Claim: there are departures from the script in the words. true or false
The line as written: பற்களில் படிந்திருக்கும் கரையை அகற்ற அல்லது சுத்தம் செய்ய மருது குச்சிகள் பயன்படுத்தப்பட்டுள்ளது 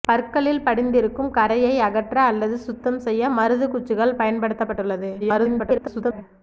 true